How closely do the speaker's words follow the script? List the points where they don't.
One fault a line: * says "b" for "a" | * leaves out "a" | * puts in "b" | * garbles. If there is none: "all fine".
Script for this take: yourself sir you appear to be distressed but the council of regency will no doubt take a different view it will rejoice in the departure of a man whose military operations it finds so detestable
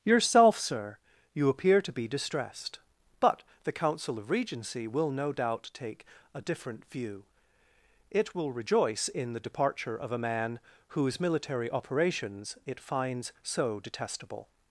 all fine